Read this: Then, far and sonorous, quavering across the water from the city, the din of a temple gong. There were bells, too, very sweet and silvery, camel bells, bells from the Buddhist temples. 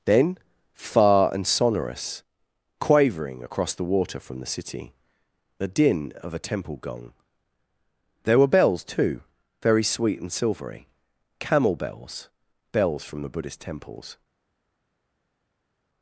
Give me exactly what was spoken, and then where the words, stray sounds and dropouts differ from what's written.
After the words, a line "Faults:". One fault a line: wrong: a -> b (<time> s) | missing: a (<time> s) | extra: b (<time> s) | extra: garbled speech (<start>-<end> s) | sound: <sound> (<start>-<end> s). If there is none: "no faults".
Then, far and sonorous, quavering across the water from the city, the din of a temple gong. There were bells, too, very sweet and silvery, camel bells, bells from the Buddhist temples.
Faults:
no faults